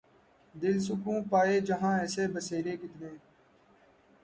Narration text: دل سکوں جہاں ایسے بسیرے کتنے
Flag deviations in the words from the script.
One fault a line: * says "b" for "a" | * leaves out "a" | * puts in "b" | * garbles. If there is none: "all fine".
* puts in "پائے"